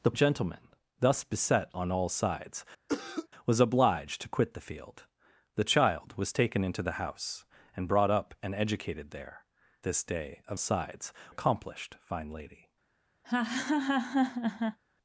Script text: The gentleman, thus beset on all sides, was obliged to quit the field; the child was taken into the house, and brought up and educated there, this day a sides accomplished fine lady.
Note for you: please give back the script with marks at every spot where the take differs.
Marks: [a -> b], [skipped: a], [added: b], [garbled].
The gentleman, thus beset on all sides, was obliged to quit the field; the child was taken into the house, and brought up and educated there, this day a sides accomplished fine lady.